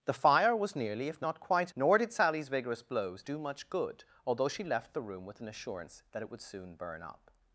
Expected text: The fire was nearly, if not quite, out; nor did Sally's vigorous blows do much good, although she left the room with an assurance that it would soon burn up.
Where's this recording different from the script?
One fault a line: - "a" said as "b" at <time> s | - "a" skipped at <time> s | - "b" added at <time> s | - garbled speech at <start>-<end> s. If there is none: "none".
- "out" skipped at 1.8 s